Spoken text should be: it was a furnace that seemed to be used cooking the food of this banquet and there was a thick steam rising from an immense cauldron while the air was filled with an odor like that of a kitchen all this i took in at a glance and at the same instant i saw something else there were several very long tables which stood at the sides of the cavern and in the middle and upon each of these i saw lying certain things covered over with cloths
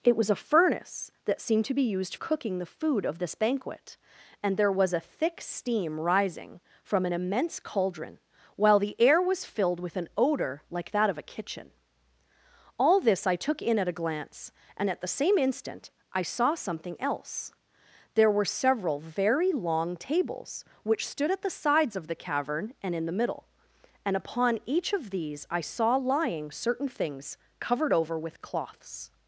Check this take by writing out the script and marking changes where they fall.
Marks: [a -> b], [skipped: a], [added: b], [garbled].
it was a furnace that seemed to be used cooking the food of this banquet and there was a thick steam rising from an immense cauldron while the air was filled with an odor like that of a kitchen all this i took in at a glance and at the same instant i saw something else there were several very long tables which stood at the sides of the cavern and in the middle and upon each of these i saw lying certain things covered over with cloths